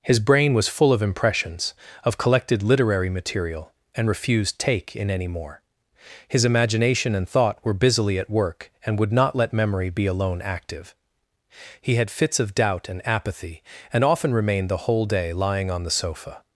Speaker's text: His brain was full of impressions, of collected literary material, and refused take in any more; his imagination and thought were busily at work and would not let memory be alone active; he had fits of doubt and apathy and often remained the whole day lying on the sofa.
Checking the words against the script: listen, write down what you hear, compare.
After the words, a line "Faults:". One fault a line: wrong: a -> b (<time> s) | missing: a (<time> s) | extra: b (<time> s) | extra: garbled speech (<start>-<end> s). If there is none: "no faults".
His brain was full of impressions, of collected literary material, and refused take in any more; his imagination and thought were busily at work and would not let memory be alone active; he had fits of doubt and apathy and often remained the whole day lying on the sofa.
Faults:
no faults